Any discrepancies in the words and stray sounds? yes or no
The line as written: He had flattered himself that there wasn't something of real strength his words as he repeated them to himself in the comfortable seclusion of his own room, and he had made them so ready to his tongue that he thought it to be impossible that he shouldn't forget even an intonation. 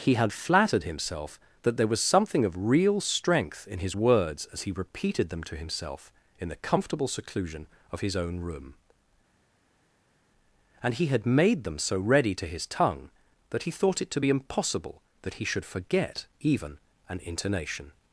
yes